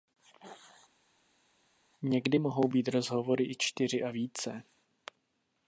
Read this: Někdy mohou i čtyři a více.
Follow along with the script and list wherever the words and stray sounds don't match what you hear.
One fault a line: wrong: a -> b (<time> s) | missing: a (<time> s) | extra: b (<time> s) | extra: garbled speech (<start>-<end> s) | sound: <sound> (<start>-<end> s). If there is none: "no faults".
extra: být rozhovory (2.7 s)